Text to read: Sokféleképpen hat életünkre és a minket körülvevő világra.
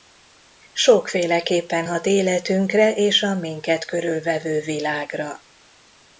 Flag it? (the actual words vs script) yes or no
no